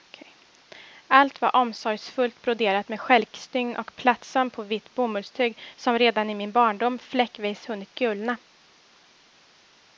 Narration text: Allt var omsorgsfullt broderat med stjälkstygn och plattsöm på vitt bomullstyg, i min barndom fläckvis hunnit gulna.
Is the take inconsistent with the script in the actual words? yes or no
yes